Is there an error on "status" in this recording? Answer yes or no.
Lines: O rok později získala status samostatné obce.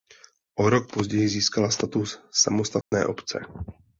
no